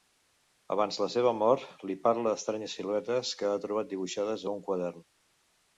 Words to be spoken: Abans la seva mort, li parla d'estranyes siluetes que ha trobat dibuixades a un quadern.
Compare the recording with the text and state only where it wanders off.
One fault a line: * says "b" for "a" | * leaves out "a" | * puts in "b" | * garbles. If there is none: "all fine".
all fine